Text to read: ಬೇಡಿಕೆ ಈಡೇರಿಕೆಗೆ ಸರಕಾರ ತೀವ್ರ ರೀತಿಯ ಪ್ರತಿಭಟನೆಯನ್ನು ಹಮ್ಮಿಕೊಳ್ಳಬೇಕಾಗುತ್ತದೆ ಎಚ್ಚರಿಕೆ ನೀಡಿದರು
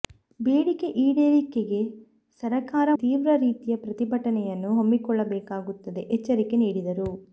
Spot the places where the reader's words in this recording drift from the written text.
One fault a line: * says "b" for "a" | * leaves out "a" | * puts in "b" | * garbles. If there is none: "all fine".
all fine